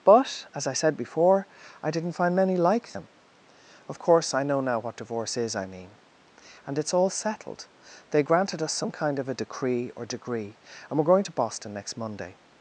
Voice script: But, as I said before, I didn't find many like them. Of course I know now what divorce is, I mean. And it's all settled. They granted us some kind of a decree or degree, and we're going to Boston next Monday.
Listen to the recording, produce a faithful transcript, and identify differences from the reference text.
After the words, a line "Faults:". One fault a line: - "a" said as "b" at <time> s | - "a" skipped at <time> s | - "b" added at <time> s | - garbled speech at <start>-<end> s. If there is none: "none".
But, as I said before, I didn't find many like them. Of course I know now what divorce is, I mean. And it's all settled. They granted us some kind of a decree or degree, and we're going to Boston next Monday.
Faults:
none